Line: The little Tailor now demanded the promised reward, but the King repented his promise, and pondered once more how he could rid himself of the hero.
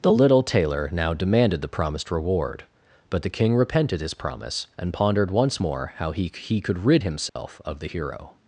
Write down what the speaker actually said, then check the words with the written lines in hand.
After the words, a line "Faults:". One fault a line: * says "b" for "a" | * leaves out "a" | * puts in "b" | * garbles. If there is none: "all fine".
The little Tailor now demanded the promised reward, but the King repented his promise, and pondered once more how he he could rid himself of the hero.
Faults:
* puts in "he"